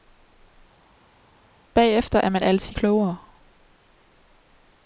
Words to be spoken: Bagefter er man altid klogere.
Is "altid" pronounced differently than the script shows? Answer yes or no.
no